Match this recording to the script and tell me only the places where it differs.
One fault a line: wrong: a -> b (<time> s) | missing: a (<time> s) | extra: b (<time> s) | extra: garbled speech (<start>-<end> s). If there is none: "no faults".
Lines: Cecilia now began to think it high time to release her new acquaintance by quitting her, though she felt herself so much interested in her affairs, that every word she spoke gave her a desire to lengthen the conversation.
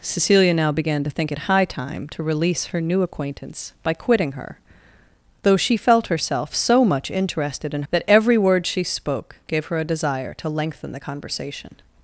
missing: her affairs (7.8 s)